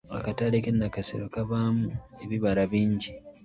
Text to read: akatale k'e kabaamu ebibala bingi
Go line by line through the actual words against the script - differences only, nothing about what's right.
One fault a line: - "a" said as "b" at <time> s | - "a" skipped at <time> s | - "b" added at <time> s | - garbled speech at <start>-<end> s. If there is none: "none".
- "nakasero" added at 0.7 s